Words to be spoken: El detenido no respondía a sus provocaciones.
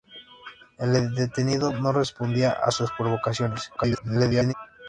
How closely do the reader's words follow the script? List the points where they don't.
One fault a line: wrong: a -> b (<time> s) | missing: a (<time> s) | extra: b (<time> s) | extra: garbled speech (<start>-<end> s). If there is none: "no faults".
extra: garbled speech (3.8-4.5 s)